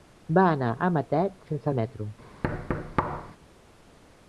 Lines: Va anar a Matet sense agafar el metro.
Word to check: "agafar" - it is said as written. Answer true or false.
false